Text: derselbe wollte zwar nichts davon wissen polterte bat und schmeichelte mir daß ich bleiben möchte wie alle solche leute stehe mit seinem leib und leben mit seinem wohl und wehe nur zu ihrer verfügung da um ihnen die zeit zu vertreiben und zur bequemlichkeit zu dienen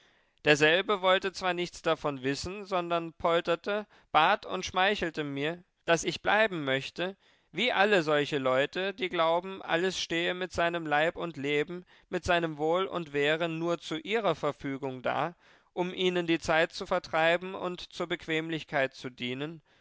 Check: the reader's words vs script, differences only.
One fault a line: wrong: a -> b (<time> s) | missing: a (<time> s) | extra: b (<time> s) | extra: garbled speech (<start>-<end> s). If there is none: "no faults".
extra: sondern (2.6 s)
extra: die glauben alles (8.9 s)